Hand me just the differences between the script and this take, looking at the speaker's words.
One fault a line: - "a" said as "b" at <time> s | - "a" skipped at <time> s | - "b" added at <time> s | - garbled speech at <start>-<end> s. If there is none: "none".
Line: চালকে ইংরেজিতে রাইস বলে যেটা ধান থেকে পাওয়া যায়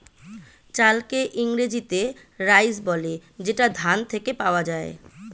none